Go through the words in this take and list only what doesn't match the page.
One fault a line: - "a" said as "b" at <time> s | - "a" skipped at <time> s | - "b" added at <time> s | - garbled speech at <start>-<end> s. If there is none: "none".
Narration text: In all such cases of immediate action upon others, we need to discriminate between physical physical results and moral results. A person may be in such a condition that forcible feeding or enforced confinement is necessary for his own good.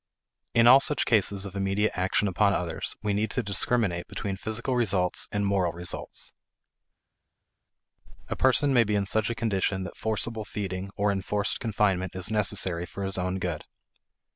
- "physical" skipped at 4.8 s